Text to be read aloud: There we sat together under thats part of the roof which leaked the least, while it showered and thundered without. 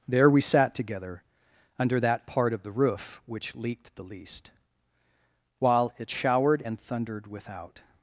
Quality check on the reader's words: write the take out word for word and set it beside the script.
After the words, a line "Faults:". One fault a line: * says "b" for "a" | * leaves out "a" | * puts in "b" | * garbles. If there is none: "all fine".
There we sat together under that part of the roof which leaked the least, while it showered and thundered without.
Faults:
* says "that" for "thats"